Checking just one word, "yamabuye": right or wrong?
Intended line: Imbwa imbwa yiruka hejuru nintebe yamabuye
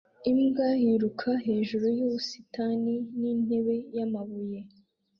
right